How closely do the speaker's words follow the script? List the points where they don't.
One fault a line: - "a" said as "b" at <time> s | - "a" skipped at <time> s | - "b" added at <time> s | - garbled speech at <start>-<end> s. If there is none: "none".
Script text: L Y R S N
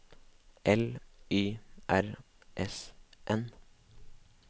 none